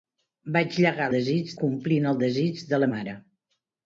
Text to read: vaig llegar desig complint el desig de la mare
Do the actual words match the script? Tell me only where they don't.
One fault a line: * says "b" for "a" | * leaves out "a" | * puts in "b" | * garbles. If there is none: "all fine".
all fine